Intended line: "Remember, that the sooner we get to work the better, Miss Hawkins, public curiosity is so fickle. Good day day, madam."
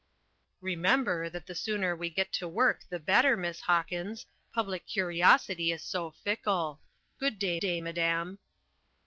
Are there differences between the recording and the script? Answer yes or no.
no